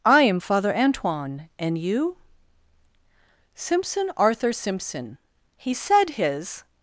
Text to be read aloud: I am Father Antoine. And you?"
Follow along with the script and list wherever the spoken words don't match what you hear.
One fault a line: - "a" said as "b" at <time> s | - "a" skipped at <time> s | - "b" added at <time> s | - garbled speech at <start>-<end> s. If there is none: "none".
- "Simpson Arthur Simpson He said his" added at 3.5 s